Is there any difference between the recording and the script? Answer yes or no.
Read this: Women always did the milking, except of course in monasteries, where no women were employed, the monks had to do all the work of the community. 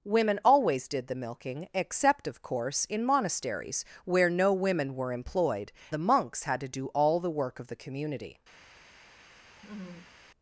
no